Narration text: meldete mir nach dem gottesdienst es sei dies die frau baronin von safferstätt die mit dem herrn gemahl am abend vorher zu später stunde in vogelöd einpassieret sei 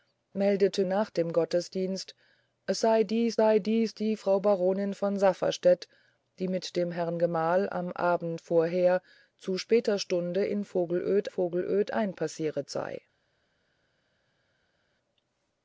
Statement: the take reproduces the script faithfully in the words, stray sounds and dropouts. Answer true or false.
false